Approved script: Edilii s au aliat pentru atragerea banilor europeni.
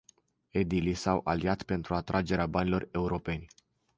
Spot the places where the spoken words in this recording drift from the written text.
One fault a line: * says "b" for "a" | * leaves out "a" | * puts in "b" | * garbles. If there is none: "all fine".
all fine